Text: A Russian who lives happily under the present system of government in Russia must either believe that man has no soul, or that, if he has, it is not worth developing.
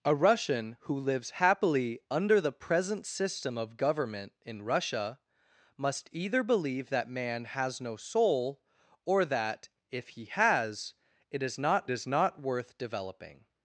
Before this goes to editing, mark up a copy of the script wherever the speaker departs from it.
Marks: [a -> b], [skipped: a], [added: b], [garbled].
A Russian who lives happily under the present system of government in Russia must either believe that man has no soul, or that, if he has, it is not [added: is not] worth developing.